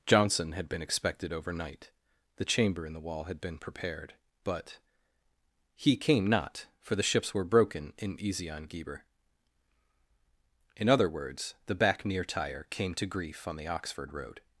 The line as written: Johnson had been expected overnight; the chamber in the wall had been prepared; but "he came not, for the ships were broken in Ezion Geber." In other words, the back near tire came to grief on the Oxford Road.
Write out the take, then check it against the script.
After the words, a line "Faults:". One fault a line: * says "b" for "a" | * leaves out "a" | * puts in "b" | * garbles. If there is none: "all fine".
Johnson had been expected overnight; the chamber in the wall had been prepared; but "he came not, for the ships were broken in Ezion Geber." In other words, the back near tire came to grief on the Oxford Road.
Faults:
all fine